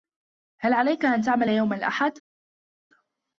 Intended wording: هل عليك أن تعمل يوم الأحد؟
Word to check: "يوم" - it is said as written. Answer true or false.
true